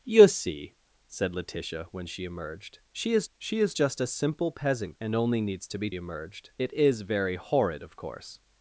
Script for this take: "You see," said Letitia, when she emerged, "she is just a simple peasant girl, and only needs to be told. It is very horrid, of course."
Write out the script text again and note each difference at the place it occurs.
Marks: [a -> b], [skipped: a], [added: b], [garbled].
"You see," said Letitia, when she emerged, "she is [added: she is] just a simple peasant [skipped: girl,] and only needs to be [told. -> emerged] It is very horrid, of course."